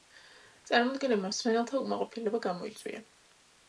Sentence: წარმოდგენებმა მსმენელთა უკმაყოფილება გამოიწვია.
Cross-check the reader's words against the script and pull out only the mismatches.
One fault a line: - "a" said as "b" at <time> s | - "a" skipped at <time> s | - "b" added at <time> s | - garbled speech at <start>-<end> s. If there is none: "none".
none